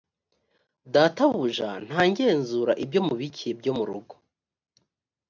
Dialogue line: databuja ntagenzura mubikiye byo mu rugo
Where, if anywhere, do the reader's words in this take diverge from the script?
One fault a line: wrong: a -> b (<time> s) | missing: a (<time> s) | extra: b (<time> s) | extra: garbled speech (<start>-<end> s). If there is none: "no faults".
extra: ibyo (2.8 s)